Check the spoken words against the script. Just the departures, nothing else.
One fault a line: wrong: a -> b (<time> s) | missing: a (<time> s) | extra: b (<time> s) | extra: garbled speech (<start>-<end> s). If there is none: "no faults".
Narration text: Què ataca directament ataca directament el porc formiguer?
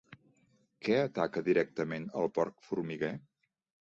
missing: ataca directament (2.1 s)